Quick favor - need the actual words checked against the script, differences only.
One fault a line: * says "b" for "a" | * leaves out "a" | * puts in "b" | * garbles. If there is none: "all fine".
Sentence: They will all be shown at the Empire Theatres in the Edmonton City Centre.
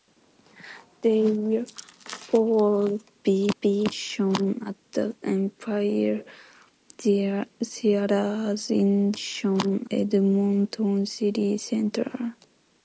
* puts in "be"
* says "shown" for "the"